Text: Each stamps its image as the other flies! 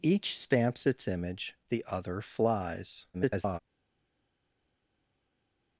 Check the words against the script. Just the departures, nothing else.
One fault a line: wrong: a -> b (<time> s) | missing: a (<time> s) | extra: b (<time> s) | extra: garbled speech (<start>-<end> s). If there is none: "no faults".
missing: as (1.6 s)
extra: garbled speech (3.1-3.6 s)